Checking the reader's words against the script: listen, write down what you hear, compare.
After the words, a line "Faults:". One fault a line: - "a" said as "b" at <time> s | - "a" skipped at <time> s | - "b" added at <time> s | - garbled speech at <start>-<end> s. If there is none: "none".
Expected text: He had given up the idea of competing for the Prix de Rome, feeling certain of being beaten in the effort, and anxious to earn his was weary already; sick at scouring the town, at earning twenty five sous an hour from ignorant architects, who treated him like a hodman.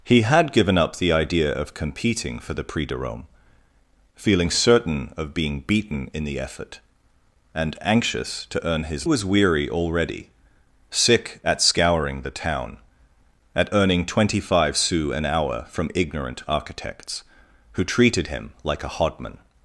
He had given up the idea of competing for the Prix de Rome, feeling certain of being beaten in the effort, and anxious to earn his was weary already; sick at scouring the town, at earning twenty five sous an hour from ignorant architects, who treated him like a hodman.
Faults:
none